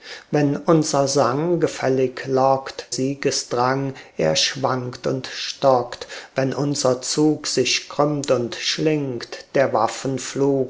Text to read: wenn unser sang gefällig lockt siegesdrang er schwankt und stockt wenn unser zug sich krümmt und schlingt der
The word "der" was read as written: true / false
true